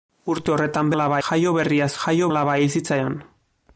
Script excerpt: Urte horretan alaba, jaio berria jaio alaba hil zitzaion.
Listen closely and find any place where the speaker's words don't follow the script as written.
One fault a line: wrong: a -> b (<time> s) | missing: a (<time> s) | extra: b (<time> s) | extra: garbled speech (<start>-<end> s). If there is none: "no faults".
no faults